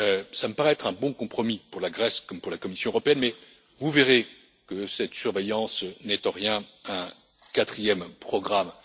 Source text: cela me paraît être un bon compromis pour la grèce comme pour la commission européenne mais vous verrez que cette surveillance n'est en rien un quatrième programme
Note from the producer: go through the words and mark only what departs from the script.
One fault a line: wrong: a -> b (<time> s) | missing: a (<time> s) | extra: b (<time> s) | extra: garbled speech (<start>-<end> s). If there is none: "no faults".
no faults